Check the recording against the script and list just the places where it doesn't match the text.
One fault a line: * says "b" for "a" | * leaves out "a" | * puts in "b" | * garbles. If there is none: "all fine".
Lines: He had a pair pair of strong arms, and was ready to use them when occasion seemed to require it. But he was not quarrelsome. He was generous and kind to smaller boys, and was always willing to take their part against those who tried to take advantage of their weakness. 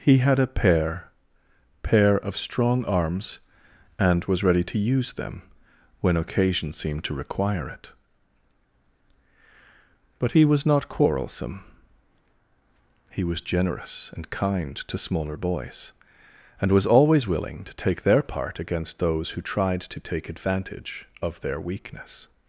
all fine